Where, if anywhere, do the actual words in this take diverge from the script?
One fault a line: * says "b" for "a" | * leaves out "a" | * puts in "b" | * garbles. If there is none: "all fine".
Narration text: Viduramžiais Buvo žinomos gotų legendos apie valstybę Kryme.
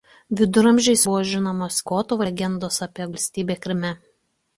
all fine